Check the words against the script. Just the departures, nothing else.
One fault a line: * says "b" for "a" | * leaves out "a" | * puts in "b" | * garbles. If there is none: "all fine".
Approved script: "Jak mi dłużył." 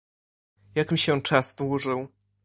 * puts in "się czas"